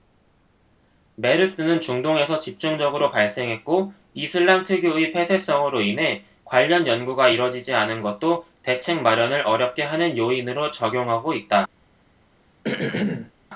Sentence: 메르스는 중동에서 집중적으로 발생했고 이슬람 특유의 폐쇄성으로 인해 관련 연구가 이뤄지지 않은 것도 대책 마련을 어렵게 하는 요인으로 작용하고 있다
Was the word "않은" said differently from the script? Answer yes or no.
no